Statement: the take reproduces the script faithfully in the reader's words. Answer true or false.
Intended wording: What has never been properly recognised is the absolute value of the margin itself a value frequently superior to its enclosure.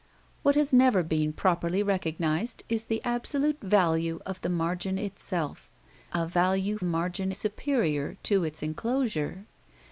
false